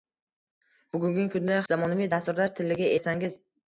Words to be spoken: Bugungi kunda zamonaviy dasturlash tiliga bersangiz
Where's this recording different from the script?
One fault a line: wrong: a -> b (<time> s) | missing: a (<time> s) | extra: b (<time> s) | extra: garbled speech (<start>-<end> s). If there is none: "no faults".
no faults